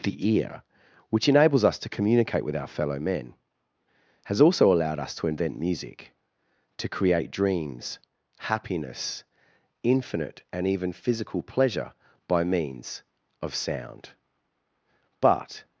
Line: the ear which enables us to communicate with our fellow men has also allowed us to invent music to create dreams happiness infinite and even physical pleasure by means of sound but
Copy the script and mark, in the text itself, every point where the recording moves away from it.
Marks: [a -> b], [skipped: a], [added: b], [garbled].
the ear which enables us to communicate with our fellow men has also allowed us to invent music to create dreams happiness infinite and even physical pleasure by means of sound but